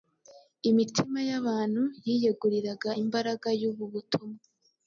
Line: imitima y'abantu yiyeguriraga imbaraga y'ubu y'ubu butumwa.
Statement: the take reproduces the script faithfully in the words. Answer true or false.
false